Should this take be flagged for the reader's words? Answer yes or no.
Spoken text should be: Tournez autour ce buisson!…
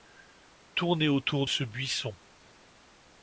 no